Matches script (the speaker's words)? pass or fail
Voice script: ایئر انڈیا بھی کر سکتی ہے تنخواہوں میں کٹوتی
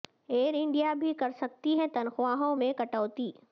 pass